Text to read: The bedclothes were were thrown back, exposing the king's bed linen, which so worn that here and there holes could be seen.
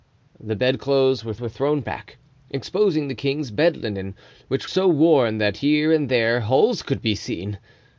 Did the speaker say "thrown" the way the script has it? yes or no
yes